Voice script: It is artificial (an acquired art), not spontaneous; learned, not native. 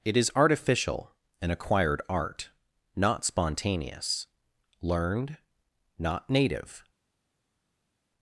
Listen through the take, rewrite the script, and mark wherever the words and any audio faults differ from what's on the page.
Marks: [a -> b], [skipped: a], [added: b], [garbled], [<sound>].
It is artificial (an acquired art), not spontaneous; learned, not native.